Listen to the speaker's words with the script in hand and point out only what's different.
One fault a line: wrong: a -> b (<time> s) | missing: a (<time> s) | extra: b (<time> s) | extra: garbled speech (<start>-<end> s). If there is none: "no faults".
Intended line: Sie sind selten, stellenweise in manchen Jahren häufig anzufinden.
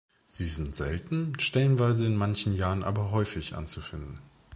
extra: aber (2.8 s)